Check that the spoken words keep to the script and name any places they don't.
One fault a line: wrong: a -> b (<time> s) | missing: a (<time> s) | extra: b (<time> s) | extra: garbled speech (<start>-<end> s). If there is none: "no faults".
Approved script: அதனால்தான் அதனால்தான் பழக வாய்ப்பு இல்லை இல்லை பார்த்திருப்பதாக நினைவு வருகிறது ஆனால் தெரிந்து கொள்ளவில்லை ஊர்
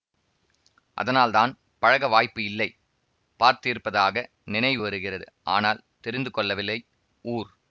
missing: அதனால்தான் (1.5 s)
missing: இல்லை (2.7 s)